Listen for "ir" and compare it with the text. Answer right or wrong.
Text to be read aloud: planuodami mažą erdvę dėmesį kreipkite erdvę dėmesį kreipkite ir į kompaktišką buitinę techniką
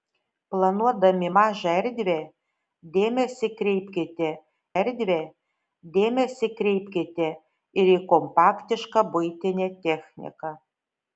right